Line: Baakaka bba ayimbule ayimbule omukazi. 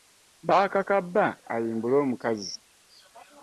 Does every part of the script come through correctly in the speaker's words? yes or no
no